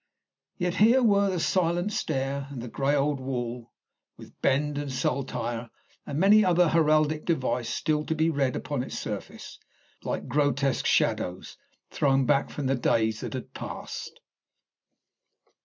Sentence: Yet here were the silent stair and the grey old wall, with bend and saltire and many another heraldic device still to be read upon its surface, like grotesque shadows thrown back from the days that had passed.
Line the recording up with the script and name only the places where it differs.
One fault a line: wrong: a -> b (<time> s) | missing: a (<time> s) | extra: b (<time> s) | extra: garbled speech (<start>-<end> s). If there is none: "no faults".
no faults